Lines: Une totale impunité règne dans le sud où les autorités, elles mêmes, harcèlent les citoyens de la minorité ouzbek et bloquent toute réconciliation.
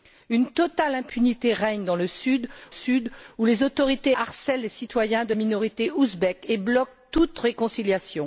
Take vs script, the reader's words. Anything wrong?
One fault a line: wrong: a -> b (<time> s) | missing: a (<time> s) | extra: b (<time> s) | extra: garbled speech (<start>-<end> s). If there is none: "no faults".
extra: sud (2.7 s)
missing: elles mêmes (4.1 s)
missing: la (5.3 s)